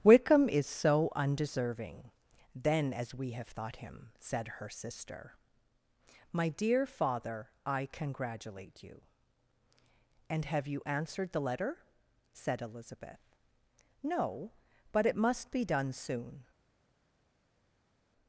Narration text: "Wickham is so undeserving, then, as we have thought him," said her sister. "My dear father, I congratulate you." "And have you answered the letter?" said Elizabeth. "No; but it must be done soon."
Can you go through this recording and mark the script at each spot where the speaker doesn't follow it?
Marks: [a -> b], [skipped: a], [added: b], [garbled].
"Wickham is so undeserving, then, as we have thought him," said her sister. "My dear father, I congratulate you." "And have you answered the letter?" said Elizabeth. "No; but it must be done soon."